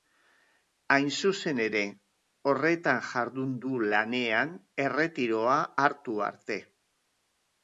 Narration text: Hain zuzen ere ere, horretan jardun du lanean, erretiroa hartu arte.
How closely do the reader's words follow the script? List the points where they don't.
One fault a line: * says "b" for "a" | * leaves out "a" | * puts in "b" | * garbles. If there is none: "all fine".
* leaves out "ere"